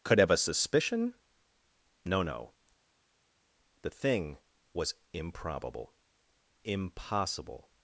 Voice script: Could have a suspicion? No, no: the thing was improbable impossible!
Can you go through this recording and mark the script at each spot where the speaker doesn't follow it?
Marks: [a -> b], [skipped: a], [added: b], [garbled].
Could have a suspicion? No, no: the thing was improbable impossible!